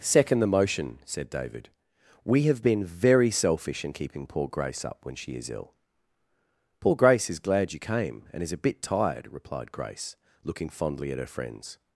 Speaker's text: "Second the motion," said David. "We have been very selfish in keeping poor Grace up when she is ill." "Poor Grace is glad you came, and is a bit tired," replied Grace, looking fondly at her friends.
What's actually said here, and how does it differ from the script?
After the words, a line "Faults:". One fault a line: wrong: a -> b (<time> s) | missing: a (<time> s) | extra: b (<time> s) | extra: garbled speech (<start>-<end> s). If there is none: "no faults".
"Second the motion," said David. "We have been very selfish in keeping poor Grace up when she is ill." "Poor Grace is glad you came, and is a bit tired," replied Grace, looking fondly at her friends.
Faults:
no faults